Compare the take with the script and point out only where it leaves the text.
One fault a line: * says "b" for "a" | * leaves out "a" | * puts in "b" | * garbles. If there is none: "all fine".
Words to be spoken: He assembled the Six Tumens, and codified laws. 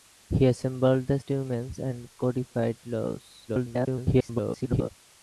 * leaves out "Six"
* garbles